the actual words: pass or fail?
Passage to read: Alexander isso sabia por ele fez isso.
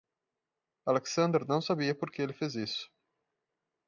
fail